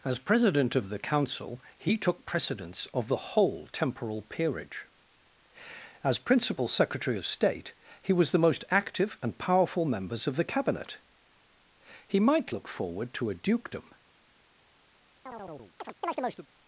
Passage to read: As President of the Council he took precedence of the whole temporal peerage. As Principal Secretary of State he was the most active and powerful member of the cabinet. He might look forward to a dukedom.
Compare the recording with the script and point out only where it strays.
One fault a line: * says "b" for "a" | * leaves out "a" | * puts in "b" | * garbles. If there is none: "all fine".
* says "members" for "member"